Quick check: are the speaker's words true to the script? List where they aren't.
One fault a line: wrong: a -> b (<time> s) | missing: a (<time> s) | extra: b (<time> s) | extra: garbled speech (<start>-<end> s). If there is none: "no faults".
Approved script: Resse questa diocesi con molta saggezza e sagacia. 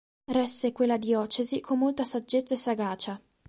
wrong: questa -> quella (0.7 s)